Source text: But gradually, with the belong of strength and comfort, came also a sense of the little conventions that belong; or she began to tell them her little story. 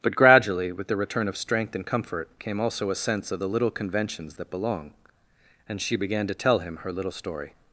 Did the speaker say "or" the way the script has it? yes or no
no